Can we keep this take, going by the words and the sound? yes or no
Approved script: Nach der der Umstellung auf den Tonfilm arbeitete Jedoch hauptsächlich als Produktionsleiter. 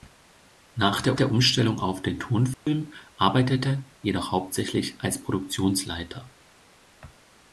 no